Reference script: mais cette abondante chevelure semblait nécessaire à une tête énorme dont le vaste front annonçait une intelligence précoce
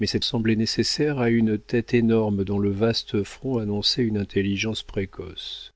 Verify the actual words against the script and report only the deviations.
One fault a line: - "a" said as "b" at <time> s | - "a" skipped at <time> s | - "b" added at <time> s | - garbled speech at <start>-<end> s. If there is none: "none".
- "abondante chevelure" skipped at 0.2 s